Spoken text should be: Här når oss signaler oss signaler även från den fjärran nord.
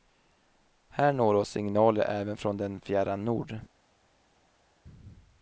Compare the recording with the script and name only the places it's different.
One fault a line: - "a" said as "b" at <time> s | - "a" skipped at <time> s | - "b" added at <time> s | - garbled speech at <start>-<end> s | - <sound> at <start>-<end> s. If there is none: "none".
- "oss signaler" skipped at 2.0 s